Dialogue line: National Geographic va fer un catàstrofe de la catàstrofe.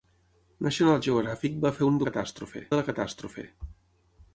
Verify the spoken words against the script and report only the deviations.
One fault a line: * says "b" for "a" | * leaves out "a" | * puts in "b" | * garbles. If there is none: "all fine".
all fine